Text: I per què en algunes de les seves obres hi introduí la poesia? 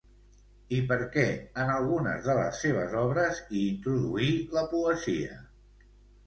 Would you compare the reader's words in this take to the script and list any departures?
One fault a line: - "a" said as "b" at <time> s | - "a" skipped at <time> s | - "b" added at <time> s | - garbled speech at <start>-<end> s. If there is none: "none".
none